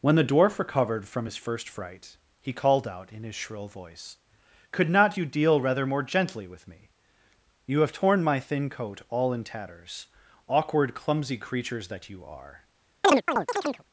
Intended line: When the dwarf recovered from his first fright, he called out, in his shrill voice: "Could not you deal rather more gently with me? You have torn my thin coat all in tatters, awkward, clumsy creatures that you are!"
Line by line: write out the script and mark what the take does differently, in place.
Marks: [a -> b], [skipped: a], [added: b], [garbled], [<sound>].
When the dwarf recovered from his first fright, he called out, in his shrill voice: "Could not you deal rather more gently with me? You have torn my thin coat all in tatters, awkward, clumsy creatures that you are!" [chirp]